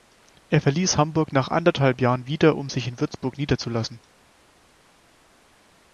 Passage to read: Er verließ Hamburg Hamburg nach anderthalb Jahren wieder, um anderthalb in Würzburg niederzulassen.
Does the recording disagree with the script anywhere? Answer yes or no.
yes